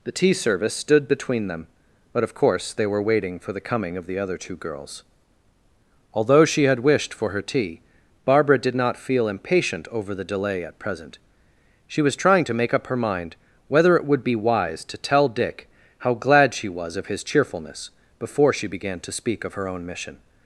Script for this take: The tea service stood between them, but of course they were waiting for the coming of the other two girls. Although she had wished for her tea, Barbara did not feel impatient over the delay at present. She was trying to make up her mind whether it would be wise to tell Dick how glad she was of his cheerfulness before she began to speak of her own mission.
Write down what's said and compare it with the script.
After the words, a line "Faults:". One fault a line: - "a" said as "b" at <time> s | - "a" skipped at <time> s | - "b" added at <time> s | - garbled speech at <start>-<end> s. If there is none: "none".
The tea service stood between them, but of course they were waiting for the coming of the other two girls. Although she had wished for her tea, Barbara did not feel impatient over the delay at present. She was trying to make up her mind whether it would be wise to tell Dick how glad she was of his cheerfulness before she began to speak of her own mission.
Faults:
none